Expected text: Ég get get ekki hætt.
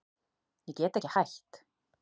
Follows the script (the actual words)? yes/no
no